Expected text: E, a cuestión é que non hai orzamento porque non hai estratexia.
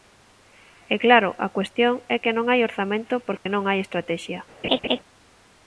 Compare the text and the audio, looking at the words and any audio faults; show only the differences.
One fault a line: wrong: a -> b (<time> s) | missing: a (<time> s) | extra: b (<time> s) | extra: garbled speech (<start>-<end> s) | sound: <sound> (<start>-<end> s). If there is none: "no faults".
extra: claro (1.1 s)
sound: dropout (3.4-3.5 s)
sound: laugh (4.6-5.0 s)